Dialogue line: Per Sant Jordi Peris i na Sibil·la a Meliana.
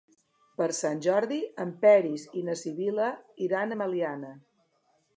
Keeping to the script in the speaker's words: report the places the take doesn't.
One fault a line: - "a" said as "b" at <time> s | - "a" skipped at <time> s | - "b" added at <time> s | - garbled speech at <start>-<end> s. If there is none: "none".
- "en" added at 1.6 s
- "iran" added at 3.5 s